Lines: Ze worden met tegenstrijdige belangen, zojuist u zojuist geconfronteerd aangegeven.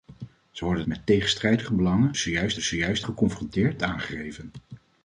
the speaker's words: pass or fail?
pass